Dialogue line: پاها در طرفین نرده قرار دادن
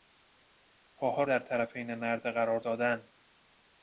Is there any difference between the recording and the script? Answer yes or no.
no